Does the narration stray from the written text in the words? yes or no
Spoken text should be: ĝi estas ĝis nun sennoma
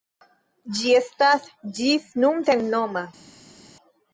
no